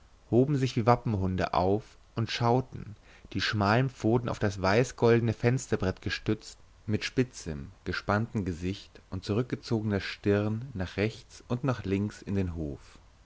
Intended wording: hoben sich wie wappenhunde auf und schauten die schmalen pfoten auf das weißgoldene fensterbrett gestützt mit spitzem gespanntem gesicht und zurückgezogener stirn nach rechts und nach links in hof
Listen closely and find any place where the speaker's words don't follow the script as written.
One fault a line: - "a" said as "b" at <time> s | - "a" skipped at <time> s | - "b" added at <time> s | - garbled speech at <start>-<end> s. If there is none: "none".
- "den" added at 12.3 s